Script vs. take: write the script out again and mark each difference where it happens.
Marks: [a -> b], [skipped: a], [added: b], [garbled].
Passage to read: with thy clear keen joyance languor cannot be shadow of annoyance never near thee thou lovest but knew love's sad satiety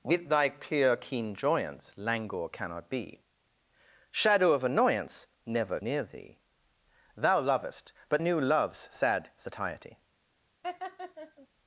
with thy clear keen joyance languor cannot be shadow of annoyance never near thee thou lovest but knew love's sad satiety